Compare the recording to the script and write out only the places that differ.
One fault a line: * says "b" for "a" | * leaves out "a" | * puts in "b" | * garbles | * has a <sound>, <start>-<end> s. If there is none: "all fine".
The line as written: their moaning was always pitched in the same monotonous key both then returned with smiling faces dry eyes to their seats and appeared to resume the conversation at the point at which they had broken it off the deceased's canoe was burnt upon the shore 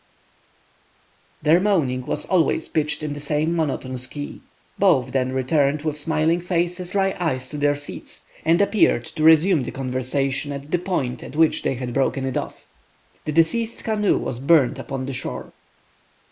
all fine